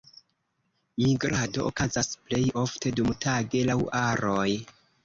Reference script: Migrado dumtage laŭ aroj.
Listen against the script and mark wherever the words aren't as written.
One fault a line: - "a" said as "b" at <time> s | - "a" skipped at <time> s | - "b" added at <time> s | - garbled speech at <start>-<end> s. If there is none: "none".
- "okazas plej ofte" added at 1.7 s